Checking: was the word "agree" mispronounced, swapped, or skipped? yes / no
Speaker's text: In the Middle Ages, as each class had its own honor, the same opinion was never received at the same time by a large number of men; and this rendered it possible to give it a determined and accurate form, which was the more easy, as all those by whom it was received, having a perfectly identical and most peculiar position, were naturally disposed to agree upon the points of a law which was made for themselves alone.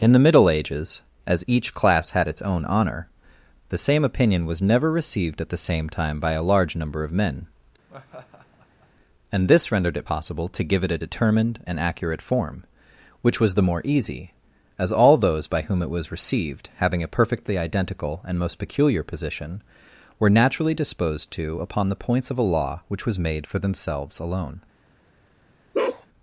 yes